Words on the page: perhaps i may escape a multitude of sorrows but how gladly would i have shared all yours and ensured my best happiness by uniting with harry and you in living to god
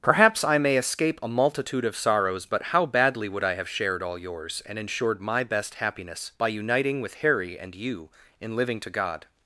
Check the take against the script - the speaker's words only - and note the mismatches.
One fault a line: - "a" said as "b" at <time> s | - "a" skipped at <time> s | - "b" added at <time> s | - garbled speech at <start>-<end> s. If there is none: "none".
- "gladly" said as "badly" at 2.9 s